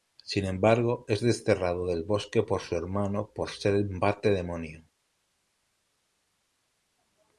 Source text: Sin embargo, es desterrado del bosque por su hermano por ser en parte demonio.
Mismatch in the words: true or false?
false